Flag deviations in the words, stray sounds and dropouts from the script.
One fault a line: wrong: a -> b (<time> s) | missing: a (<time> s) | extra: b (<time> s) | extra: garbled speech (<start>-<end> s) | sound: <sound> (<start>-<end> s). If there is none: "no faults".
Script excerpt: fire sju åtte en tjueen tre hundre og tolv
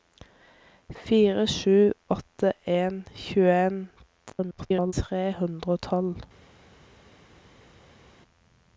extra: garbled speech (4.3-4.9 s)